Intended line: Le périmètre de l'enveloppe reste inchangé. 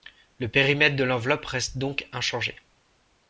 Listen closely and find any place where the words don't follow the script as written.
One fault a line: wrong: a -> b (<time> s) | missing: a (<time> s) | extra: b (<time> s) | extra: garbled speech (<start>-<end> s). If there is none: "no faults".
extra: donc (1.8 s)